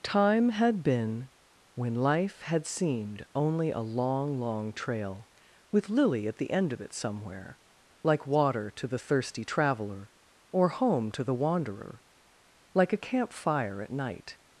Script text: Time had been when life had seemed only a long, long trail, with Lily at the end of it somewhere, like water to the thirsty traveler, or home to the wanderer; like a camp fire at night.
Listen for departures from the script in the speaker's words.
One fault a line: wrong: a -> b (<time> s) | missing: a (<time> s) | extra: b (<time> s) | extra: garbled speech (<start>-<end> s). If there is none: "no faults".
no faults